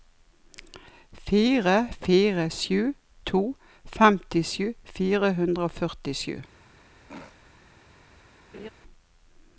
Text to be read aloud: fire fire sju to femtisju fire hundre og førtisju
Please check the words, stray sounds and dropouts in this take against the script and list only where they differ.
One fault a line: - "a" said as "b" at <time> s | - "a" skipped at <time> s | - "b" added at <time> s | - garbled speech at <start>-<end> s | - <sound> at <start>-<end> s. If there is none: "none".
- throat clearing at 7.1-7.4 s
- laugh at 8.5-8.7 s